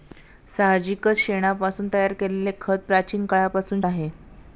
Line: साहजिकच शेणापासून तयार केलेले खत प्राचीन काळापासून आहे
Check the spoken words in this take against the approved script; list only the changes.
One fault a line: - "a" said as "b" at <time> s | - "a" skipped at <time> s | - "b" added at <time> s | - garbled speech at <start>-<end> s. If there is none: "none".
none